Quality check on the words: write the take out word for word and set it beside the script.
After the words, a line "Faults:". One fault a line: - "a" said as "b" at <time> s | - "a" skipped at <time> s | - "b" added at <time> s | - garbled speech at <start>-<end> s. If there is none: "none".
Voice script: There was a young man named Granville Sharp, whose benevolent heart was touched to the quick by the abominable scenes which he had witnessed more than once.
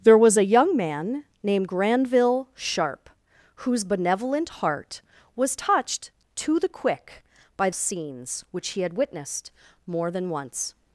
There was a young man named Granville Sharp, whose benevolent heart was touched to the quick by scenes which he had witnessed more than once.
Faults:
- "the abominable" skipped at 7.7 s